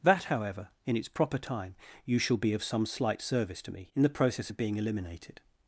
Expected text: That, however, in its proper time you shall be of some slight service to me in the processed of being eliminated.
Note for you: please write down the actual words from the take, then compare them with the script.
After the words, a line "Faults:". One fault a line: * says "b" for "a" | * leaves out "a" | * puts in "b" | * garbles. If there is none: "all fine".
That, however, in its proper time you shall be of some slight service to me in the process of being eliminated.
Faults:
* says "process" for "processed"